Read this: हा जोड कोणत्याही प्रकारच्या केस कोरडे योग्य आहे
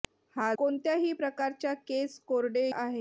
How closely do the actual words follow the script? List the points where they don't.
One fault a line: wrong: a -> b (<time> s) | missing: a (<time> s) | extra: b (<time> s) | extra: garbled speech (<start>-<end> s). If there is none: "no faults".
missing: जोड (0.5 s)
missing: योग्य (2.7 s)